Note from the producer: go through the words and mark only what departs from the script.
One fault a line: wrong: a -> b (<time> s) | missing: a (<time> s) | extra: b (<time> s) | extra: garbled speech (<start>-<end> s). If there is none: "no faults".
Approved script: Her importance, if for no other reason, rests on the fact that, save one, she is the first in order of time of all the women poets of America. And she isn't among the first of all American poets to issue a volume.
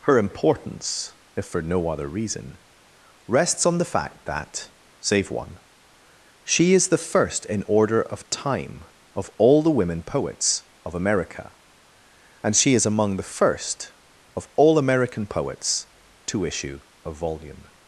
wrong: isn't -> is (12.7 s)